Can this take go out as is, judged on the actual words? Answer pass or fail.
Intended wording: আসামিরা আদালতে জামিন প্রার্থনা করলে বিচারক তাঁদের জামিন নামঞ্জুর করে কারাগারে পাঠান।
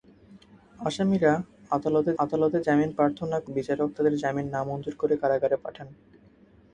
fail